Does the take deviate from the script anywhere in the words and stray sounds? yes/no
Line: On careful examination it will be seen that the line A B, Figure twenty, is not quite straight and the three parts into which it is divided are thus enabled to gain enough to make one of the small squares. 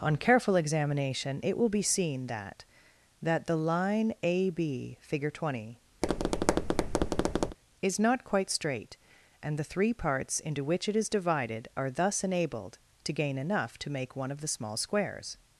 yes